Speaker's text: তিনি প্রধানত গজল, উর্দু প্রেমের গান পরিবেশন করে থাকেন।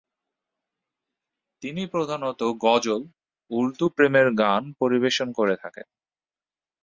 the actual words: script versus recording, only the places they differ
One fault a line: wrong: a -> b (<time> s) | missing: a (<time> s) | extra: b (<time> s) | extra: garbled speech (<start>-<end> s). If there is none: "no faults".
no faults